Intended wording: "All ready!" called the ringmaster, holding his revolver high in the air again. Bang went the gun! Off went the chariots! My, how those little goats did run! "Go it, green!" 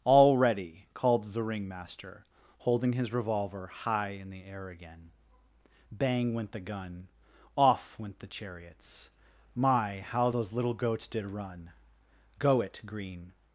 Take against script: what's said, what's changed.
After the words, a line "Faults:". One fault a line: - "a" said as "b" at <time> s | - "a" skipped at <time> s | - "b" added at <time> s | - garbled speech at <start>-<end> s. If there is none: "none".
"All ready!" called the ringmaster, holding his revolver high in the air again. Bang went the gun! Off went the chariots! My, how those little goats did run! "Go it, green!"
Faults:
none